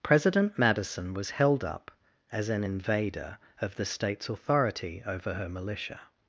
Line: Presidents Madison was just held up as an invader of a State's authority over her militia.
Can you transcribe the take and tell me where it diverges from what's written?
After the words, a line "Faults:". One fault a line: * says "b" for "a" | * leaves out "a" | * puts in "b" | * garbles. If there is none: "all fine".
President Madison was held up as an invader of the State's authority over her militia.
Faults:
* says "President" for "Presidents"
* leaves out "just"
* says "the" for "a"